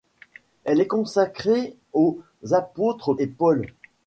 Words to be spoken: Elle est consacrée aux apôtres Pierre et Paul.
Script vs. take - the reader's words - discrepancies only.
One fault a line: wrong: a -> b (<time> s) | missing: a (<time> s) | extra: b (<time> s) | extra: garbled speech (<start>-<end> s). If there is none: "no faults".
missing: Pierre (3.1 s)